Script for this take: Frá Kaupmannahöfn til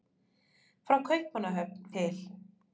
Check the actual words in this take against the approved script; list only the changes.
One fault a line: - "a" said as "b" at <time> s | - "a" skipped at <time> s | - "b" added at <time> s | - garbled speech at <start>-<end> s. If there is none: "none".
none